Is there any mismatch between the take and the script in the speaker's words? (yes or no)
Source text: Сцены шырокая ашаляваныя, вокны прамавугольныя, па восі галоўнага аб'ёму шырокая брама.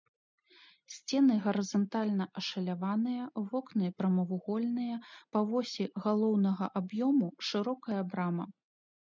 yes